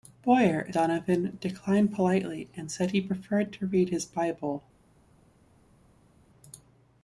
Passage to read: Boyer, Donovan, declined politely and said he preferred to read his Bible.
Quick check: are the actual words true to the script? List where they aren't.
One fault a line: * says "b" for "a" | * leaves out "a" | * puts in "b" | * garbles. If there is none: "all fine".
all fine